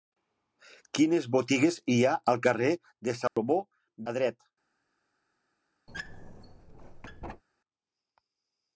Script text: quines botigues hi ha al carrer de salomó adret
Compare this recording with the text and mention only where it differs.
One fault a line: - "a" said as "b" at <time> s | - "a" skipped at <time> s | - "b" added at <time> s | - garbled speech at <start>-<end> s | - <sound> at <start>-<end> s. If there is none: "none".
- dropout at 3.3-3.4 s
- squeak at 5.9-7.4 s